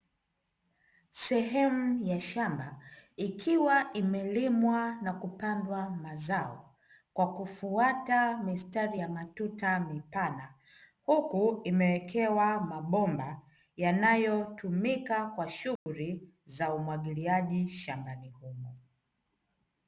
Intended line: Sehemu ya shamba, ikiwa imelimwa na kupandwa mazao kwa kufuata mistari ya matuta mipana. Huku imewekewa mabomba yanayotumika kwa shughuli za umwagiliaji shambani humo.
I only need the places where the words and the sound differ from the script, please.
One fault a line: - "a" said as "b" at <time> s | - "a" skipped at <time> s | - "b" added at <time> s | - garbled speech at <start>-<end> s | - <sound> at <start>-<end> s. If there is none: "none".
- dropout at 15.8-15.9 s